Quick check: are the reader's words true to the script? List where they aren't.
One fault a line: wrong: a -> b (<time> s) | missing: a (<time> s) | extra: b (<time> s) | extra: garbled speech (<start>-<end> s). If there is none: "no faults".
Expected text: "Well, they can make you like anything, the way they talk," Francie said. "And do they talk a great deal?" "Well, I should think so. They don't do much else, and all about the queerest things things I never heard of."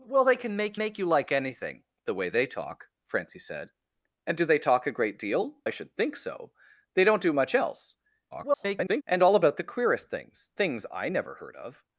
extra: make (0.8 s)
missing: Well (5.6 s)
extra: garbled speech (8.3-9.0 s)